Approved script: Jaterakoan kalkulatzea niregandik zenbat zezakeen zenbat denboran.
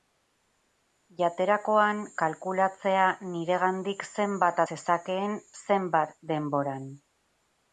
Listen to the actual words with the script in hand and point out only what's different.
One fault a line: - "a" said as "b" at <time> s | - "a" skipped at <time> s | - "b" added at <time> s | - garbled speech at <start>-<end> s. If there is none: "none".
none